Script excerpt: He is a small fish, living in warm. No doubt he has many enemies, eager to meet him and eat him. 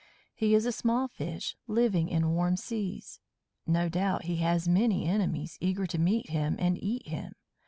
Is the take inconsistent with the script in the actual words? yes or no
yes